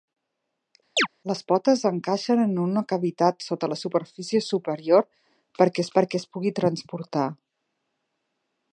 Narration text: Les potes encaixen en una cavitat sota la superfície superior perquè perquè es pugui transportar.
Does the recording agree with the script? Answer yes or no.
yes